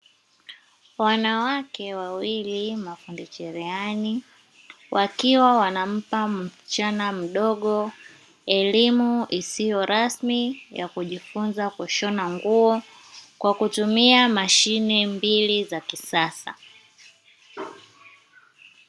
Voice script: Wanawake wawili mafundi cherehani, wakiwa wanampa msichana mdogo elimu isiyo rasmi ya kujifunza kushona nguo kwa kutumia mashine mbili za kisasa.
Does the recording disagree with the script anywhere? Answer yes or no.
no